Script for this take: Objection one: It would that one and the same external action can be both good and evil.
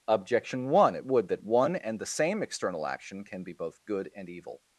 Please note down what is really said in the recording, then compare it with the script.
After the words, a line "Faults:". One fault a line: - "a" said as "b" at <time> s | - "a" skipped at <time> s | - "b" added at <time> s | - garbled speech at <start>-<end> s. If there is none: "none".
Objection one: It would that one and the same external action can be both good and evil.
Faults:
none